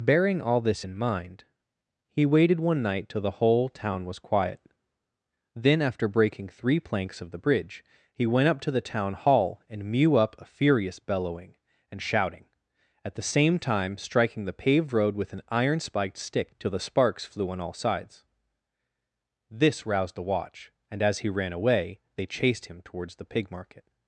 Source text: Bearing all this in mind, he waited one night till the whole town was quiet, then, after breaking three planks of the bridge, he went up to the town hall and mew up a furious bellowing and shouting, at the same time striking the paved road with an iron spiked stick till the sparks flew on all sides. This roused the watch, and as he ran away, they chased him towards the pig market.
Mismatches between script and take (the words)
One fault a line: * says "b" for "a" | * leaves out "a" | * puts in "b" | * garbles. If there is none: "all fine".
all fine